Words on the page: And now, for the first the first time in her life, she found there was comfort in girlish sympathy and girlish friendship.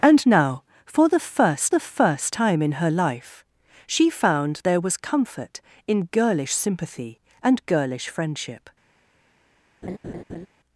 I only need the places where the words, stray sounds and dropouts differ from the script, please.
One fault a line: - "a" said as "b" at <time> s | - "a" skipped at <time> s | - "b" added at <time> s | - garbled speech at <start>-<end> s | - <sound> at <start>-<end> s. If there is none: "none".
- laugh at 9.8-10.5 s